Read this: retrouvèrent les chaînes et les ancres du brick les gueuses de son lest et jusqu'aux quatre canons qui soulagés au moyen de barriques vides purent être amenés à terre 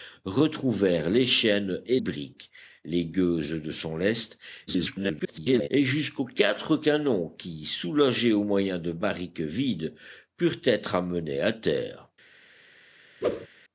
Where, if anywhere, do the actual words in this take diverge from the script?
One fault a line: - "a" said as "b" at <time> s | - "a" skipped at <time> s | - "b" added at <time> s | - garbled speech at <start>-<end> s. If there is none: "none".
- "les ancres du" skipped at 2.0 s
- garbled speech at 4.7-5.7 s